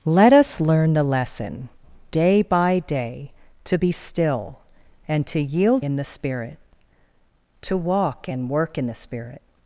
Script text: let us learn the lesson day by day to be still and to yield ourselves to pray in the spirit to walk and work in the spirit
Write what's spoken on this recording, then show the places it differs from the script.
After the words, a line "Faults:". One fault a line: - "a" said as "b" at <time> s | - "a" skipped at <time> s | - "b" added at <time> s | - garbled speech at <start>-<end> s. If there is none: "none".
let us learn the lesson day by day to be still and to yield in the spirit to walk and work in the spirit
Faults:
- "ourselves to pray" skipped at 5.9 s